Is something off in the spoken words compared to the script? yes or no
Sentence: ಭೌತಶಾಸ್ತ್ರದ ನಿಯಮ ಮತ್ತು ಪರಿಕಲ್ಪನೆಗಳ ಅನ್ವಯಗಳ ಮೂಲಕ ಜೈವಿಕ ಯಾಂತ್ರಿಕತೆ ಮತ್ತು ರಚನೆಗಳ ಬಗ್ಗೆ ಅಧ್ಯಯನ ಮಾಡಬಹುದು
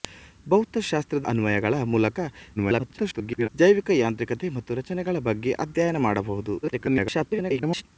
yes